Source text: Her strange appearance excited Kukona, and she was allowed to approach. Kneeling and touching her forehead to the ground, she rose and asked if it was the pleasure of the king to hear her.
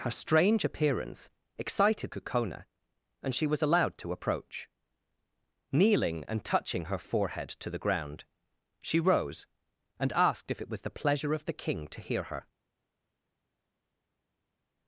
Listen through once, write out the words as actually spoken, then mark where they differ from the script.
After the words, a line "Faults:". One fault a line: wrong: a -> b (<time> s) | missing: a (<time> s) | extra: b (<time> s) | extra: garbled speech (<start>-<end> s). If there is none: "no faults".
Her strange appearance excited Kukona, and she was allowed to approach. Kneeling and touching her forehead to the ground, she rose and asked if it was the pleasure of the king to hear her.
Faults:
no faults